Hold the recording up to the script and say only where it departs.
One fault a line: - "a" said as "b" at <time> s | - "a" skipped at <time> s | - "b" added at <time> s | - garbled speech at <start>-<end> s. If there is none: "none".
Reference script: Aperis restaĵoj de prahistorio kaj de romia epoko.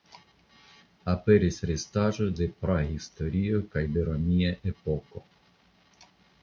none